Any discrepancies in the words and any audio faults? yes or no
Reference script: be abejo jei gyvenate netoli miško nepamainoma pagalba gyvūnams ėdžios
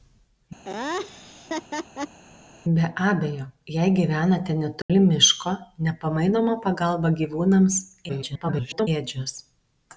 yes